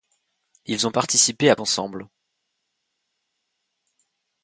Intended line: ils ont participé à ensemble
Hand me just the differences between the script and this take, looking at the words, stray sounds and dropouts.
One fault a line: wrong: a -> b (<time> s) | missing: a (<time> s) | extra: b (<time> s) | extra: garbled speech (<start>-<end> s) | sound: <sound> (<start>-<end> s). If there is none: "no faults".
no faults